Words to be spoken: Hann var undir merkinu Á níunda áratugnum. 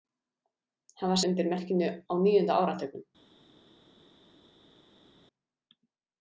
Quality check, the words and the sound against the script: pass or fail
pass